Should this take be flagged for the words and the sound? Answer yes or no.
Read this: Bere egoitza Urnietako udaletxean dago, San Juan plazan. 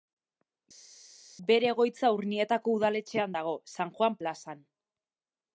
no